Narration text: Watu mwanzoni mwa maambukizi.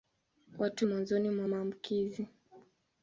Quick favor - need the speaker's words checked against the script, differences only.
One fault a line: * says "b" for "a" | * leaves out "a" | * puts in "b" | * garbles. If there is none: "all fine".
all fine